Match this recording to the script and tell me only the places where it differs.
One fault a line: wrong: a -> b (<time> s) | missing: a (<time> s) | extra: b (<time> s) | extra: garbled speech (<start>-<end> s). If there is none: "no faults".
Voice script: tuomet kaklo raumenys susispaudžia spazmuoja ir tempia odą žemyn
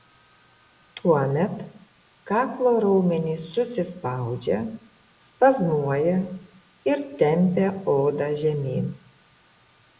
no faults